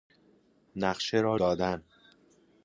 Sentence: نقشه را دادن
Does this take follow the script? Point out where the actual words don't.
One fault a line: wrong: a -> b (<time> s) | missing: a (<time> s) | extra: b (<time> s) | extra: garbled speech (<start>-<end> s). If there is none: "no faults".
no faults